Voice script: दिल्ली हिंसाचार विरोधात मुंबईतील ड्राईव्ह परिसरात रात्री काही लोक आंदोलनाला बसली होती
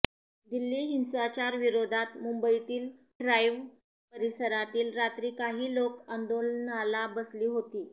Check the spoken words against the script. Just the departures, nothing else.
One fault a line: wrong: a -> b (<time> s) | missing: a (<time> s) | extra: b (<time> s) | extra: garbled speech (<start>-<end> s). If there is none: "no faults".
no faults